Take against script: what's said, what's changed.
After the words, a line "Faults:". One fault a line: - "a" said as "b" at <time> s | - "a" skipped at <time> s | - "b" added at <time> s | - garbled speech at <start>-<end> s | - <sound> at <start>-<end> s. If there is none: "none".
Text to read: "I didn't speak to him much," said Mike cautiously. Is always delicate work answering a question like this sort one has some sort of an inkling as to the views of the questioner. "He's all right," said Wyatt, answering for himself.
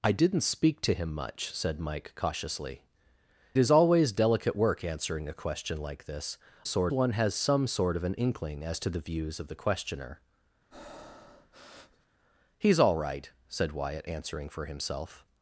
"I didn't speak to him much," said Mike cautiously. Is always delicate work answering a question like this sort one has some sort of an inkling as to the views of the questioner. "He's all right," said Wyatt, answering for himself.
Faults:
- breath at 10.7-12.1 s